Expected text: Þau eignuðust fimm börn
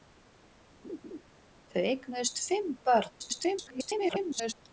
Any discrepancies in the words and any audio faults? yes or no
yes